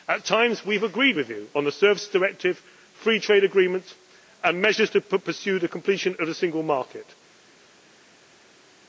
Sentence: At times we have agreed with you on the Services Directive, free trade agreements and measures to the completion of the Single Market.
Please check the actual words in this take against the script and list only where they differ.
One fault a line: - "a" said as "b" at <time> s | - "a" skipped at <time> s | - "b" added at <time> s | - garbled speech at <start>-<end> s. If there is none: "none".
- "pursue" added at 5.0 s